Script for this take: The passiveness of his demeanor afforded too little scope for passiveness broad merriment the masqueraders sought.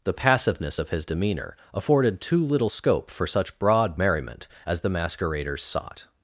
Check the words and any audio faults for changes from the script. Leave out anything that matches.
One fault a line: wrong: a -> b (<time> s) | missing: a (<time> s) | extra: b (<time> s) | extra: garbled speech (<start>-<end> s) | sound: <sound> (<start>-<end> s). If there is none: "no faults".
wrong: passiveness -> such (3.2 s)
extra: as (4.6 s)